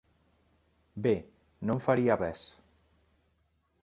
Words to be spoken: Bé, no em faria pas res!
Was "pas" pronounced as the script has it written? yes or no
no